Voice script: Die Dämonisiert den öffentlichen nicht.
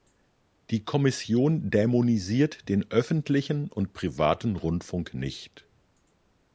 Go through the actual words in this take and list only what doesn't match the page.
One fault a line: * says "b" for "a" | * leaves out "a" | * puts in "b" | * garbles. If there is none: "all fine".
* puts in "Kommission"
* puts in "und privaten Rundfunk"